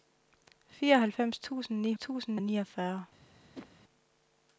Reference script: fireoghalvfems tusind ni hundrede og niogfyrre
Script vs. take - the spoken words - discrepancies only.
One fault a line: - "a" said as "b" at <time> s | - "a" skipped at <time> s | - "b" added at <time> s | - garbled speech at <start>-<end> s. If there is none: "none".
- "hundrede" said as "tusind" at 2.0 s